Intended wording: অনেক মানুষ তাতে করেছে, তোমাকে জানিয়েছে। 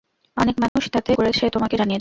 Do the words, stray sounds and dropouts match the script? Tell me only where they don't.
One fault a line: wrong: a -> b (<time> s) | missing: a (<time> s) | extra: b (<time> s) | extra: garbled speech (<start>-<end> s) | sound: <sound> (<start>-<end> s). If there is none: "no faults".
sound: dropout (0.7-0.8 s)